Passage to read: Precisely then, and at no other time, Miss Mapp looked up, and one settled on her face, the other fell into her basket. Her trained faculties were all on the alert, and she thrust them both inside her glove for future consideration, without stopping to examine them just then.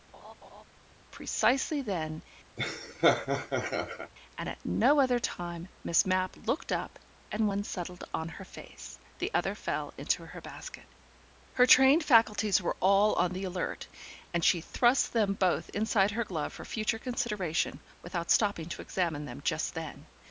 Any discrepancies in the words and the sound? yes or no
yes